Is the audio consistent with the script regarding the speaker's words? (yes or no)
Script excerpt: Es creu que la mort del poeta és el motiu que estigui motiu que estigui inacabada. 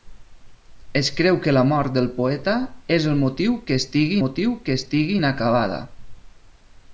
yes